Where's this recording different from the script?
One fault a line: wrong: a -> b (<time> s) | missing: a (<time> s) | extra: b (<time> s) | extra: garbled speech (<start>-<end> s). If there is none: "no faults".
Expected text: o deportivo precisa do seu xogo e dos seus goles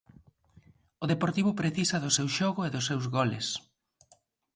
no faults